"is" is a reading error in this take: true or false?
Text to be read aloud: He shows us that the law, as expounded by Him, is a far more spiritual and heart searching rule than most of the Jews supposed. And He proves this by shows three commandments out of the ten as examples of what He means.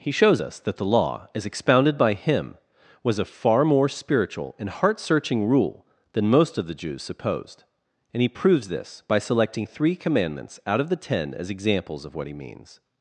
true